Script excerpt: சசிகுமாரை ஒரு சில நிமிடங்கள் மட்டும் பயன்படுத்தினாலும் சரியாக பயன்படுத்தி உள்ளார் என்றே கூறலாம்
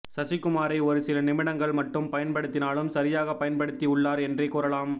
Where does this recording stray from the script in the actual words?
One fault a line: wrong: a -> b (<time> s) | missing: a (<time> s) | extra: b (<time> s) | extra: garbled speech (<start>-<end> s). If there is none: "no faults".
no faults